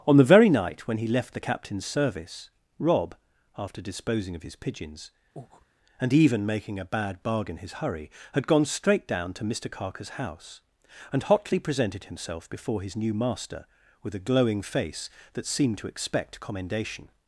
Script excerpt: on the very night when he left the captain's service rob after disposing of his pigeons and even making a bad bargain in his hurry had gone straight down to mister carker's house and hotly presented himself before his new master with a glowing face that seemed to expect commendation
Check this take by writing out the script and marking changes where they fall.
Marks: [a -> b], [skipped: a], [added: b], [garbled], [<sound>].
on the very night when he left the captain's service rob after disposing of his pigeons [breath] and even making a bad bargain [skipped: in] his hurry had gone straight down to mister carker's house and hotly presented himself before his new master with a glowing face that seemed to expect commendation